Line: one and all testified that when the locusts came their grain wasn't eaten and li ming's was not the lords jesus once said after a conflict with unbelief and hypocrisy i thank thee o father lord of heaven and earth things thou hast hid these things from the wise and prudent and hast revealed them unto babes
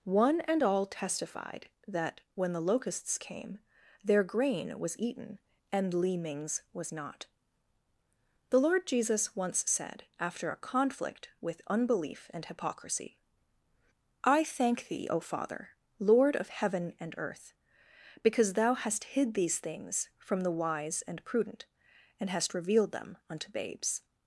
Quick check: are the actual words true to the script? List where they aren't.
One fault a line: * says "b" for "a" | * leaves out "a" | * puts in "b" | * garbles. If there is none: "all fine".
* says "was" for "wasn't"
* says "lord" for "lords"
* says "because" for "things"